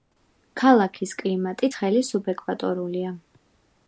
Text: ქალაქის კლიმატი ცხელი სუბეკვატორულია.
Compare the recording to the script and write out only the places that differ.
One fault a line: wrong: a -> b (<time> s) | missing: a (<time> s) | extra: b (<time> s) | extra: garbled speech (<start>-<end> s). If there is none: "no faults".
no faults